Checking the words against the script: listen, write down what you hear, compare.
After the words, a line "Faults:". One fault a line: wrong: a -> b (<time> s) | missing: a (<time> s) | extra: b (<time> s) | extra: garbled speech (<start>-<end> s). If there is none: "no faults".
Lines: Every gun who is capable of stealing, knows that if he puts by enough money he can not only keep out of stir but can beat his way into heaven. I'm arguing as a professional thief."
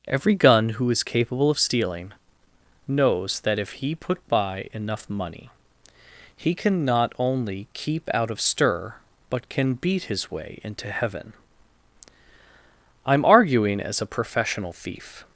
Every gun who is capable of stealing, knows that if he put by enough money he can not only keep out of stir but can beat his way into heaven. I'm arguing as a professional thief."
Faults:
wrong: puts -> put (4.0 s)